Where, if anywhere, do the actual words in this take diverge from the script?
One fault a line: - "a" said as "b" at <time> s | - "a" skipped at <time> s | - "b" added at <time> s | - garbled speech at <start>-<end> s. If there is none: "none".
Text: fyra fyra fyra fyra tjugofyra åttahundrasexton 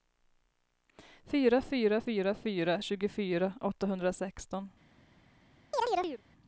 none